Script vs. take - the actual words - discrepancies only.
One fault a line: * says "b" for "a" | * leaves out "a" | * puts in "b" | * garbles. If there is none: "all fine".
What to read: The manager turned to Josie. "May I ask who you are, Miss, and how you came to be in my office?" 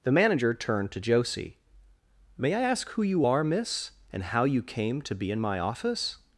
all fine